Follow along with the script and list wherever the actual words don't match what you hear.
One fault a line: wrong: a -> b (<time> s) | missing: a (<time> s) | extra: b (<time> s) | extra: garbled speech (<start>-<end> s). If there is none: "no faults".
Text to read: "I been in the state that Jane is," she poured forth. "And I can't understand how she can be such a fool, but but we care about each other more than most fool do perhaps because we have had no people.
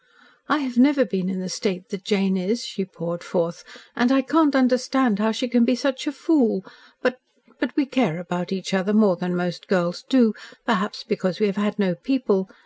extra: have never (0.6 s)
wrong: fool -> girls (9.7 s)